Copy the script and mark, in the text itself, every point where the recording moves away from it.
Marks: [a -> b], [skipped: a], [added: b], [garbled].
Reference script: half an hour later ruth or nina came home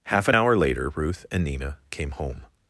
half an hour later ruth [or -> and] nina came home